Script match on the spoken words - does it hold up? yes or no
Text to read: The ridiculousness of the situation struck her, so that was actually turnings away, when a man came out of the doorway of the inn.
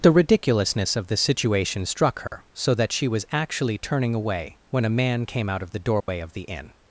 no